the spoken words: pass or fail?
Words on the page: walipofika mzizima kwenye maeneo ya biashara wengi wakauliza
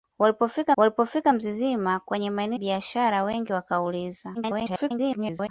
fail